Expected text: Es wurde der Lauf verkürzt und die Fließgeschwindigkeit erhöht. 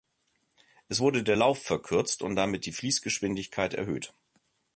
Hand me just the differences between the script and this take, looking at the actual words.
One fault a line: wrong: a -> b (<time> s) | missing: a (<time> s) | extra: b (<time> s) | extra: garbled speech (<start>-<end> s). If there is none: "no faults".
extra: damit (2.4 s)